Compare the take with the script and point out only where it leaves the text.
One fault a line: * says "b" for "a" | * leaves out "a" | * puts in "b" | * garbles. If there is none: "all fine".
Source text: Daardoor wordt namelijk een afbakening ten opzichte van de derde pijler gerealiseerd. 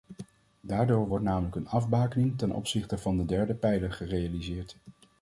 all fine